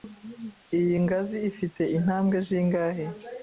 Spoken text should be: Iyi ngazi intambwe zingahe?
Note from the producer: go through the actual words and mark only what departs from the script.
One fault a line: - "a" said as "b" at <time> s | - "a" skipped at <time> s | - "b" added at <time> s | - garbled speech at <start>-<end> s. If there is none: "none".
- "ifite" added at 1.5 s